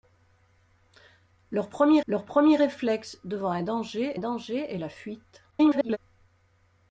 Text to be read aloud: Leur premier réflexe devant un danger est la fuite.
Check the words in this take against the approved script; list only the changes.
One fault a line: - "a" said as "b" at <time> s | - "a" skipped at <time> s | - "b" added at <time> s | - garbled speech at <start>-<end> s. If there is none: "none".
- "leur premier" added at 2.1 s
- "danger" added at 4.2 s
- garbled speech at 5.5-6.0 s